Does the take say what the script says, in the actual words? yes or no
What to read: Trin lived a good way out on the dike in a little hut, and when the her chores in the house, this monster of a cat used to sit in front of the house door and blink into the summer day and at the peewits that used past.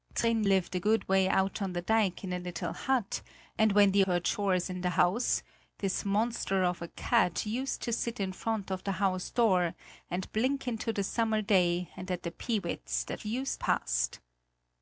yes